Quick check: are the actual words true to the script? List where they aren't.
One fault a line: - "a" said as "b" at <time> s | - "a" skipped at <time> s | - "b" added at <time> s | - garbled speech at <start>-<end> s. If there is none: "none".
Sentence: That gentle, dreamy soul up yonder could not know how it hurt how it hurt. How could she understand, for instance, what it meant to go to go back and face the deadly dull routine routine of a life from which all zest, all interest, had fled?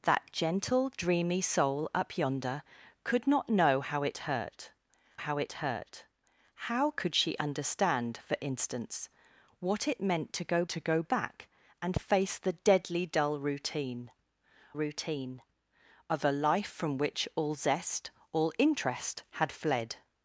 none